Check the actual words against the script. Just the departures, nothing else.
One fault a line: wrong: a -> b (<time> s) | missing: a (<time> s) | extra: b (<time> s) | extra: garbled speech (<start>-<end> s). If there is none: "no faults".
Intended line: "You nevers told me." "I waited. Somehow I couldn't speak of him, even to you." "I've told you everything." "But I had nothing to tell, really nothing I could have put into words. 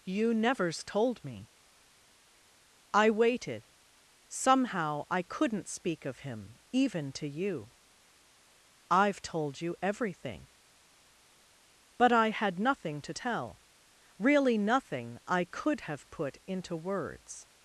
no faults